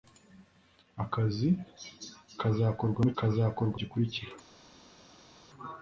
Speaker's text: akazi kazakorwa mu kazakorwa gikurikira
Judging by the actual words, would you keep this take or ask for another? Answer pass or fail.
pass